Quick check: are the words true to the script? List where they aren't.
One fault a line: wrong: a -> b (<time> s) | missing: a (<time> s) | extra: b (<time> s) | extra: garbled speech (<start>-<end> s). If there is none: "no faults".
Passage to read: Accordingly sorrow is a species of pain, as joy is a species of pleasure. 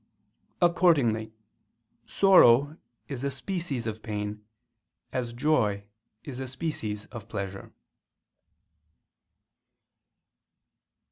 no faults